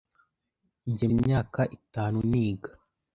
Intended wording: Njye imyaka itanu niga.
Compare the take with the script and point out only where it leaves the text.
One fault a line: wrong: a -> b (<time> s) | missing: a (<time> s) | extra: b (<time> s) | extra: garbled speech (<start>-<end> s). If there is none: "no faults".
no faults